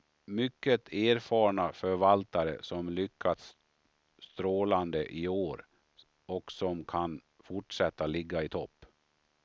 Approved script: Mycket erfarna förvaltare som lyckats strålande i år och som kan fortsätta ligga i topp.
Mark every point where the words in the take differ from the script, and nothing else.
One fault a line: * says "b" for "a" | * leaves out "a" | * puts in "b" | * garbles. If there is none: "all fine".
all fine